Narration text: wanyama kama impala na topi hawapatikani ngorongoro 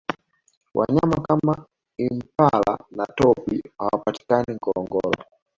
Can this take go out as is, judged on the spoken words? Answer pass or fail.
pass